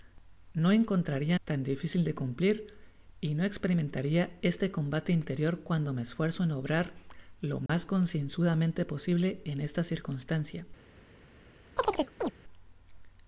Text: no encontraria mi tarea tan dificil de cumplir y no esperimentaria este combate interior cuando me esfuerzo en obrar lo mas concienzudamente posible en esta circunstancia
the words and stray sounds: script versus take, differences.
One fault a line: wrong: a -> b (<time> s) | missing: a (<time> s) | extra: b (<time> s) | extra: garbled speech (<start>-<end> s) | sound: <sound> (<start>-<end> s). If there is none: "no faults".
missing: mi tarea (1.4 s)
sound: dropout (7.7-7.7 s)
sound: chirp (11.8-12.3 s)